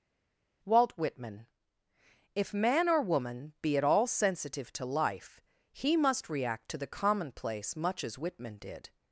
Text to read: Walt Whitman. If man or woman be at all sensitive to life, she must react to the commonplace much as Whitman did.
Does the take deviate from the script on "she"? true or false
true